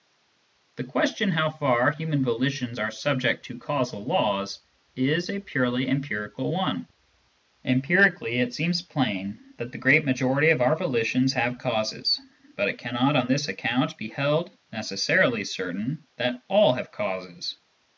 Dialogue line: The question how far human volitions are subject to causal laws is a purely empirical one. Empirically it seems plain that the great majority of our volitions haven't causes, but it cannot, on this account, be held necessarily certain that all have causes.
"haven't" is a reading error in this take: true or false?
true